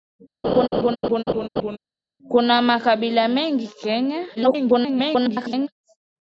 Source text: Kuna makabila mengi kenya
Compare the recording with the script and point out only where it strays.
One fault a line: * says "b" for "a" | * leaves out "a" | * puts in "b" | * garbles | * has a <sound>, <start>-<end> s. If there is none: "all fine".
* has a laugh, 0.4-1.8 s
* garbles